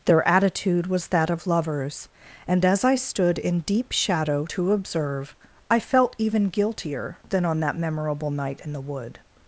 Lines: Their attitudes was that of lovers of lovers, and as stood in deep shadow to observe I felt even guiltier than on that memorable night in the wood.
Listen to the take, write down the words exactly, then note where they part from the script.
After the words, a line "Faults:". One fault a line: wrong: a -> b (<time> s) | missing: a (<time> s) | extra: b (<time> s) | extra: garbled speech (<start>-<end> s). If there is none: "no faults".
Their attitude was that of lovers, and as I stood in deep shadow to observe I felt even guiltier than on that memorable night in the wood.
Faults:
wrong: attitudes -> attitude (0.3 s)
missing: of lovers (2.1 s)
extra: I (2.8 s)